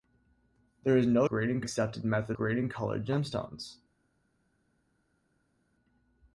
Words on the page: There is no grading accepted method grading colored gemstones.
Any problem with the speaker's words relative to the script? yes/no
no